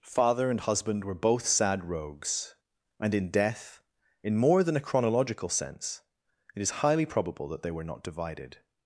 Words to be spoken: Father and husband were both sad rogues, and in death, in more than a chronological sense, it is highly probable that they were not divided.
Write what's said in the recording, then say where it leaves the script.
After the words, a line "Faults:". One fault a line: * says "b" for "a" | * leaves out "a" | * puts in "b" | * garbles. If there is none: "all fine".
Father and husband were both sad rogues, and in death, in more than a chronological sense, it is highly probable that they were not divided.
Faults:
all fine